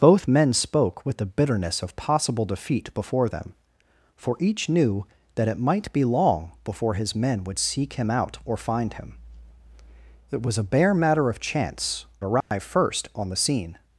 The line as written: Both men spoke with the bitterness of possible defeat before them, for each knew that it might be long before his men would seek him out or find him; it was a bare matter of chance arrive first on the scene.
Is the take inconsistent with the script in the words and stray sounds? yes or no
yes